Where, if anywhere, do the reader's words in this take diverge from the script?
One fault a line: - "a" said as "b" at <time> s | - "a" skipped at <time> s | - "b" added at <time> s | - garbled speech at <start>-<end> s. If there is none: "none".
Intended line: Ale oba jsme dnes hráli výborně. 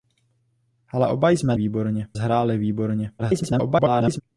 - "dnes" said as "výborně" at 1.5 s
- garbled speech at 3.2-4.2 s